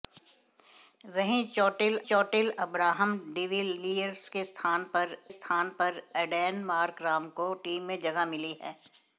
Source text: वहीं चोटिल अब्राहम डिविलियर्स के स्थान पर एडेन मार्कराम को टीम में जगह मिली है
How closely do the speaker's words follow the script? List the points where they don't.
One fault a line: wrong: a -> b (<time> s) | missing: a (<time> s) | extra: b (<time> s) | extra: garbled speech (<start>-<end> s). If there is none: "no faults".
extra: चोटिल (2.1 s)
extra: स्थान पर (5.3 s)